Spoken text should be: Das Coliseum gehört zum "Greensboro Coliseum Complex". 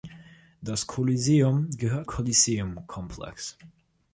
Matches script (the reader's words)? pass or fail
fail